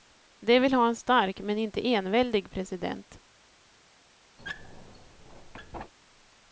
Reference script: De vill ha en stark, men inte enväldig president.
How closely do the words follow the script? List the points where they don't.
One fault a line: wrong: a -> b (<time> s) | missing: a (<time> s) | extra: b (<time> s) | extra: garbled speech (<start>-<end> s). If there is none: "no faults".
no faults